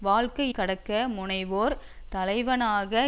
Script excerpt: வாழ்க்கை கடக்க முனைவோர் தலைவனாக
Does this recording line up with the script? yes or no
yes